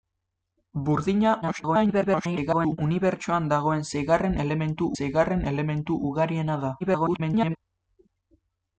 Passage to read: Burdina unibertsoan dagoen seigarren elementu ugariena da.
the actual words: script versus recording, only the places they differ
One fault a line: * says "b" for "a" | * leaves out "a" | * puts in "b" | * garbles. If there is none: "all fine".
* garbles
* puts in "seigarren elementu"
* garbles